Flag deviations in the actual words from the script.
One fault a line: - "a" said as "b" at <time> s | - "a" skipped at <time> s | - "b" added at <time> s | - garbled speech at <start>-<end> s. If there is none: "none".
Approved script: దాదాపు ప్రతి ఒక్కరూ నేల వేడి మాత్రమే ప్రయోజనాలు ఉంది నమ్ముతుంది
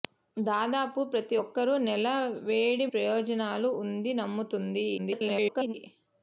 - "మాత్రమే" skipped at 2.9 s
- garbled speech at 5.0-5.7 s